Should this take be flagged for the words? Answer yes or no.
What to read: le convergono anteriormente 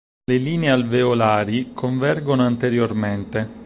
yes